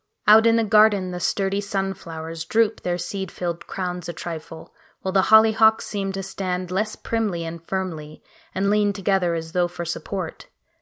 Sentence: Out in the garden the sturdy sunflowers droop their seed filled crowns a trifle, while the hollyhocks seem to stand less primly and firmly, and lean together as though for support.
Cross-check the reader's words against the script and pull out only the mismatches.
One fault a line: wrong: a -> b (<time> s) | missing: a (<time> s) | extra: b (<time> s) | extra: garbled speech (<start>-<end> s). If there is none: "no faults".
no faults